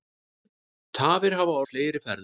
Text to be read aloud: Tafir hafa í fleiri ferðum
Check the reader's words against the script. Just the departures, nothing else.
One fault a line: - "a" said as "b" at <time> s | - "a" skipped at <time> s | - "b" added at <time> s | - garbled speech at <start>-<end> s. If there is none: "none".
none